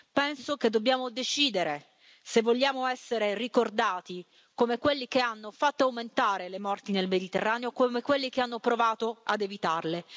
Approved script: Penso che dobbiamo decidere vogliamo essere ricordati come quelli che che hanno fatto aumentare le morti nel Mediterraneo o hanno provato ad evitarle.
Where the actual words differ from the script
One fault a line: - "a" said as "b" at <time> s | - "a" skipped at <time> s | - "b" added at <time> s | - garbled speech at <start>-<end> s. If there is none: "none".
- "se" added at 2.2 s
- "che" skipped at 5.2 s
- "come quelli che" added at 7.7 s